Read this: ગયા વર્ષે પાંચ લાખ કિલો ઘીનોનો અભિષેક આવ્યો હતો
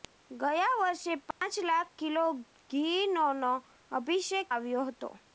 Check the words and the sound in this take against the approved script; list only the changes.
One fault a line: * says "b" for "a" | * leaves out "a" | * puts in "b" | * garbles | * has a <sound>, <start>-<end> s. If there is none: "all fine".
* has a dropout, 1.3-1.4 s